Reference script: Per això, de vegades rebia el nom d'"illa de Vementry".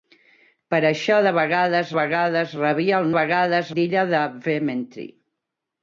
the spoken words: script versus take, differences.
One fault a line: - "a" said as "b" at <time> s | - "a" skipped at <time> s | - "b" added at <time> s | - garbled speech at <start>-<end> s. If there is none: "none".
- "vegades" added at 2.0 s
- "nom" said as "vegades" at 3.2 s